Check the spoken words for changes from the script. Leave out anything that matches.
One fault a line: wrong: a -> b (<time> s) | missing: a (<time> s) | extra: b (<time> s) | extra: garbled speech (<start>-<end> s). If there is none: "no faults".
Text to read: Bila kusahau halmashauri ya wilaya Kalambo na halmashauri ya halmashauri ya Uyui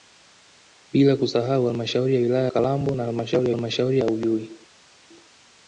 no faults